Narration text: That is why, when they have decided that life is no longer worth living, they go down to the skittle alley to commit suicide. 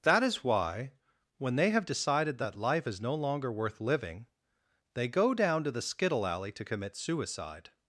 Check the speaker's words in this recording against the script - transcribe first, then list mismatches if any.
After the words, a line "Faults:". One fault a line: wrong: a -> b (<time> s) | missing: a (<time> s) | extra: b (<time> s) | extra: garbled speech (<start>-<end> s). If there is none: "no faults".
That is why, when they have decided that life is no longer worth living, they go down to the skittle alley to commit suicide.
Faults:
no faults